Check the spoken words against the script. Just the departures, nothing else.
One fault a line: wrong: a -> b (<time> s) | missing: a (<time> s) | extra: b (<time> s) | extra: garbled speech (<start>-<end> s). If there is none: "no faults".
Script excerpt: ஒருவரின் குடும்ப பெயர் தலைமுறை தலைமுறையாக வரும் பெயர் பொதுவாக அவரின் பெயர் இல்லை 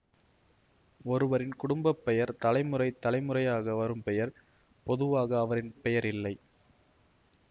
no faults